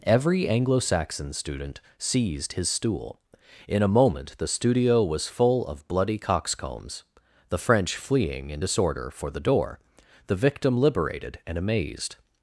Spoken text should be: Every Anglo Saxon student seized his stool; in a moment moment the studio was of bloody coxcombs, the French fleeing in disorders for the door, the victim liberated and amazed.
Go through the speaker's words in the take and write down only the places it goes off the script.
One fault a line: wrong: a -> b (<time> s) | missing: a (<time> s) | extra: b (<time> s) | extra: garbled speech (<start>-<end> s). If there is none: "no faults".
missing: moment (4.3 s)
extra: full (5.3 s)
wrong: disorders -> disorder (8.6 s)